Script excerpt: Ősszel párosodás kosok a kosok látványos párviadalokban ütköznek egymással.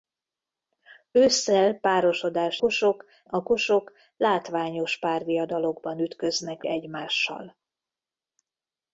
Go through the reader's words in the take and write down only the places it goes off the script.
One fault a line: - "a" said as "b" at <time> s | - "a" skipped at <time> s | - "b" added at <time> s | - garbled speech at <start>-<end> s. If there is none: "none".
none